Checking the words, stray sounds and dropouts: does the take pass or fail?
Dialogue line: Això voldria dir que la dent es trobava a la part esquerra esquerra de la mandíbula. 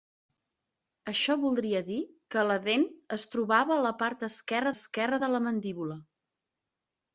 pass